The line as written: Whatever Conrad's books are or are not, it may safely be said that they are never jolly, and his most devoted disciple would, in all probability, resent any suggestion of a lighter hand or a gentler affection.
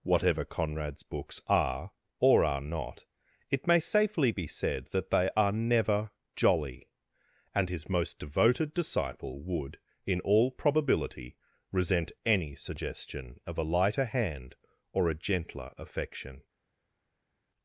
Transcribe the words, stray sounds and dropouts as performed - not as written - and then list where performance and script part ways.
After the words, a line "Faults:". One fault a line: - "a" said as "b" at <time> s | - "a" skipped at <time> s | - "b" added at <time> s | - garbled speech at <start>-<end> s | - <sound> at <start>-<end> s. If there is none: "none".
Whatever Conrad's books are or are not, it may safely be said that they are never jolly, and his most devoted disciple would, in all probability, resent any suggestion of a lighter hand or a gentler affection.
Faults:
none